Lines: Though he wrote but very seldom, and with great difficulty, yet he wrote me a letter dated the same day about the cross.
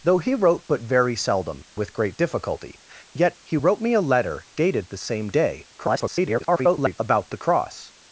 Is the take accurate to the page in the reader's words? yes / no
no